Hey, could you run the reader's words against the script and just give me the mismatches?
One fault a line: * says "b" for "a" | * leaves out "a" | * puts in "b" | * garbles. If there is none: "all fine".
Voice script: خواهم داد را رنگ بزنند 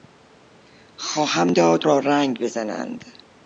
all fine